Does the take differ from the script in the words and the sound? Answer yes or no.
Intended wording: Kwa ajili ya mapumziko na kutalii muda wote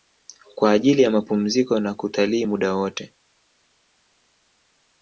no